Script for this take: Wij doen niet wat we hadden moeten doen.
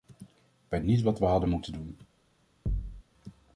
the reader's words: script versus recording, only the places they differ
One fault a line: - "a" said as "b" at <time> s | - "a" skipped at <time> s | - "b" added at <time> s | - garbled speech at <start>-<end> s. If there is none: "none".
- "doen" skipped at 0.8 s